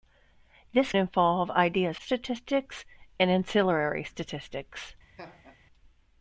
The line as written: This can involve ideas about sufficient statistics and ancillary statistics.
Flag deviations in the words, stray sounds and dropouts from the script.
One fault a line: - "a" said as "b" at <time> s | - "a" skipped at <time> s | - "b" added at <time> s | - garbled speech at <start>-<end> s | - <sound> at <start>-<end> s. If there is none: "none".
- "can" skipped at 0.9 s
- "about sufficient" skipped at 2.0 s
- laugh at 5.2-5.6 s